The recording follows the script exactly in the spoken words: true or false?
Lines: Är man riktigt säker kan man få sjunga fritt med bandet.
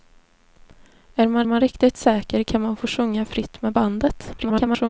false